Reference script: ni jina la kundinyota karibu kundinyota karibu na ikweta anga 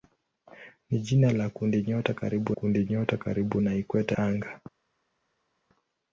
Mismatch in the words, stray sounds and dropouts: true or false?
false